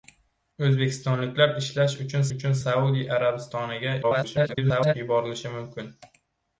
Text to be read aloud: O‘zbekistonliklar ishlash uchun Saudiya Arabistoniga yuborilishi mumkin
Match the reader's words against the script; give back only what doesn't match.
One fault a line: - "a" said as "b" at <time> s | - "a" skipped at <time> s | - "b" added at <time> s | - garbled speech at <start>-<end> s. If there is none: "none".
- "uchun" added at 2.4 s
- garbled speech at 4.0-4.9 s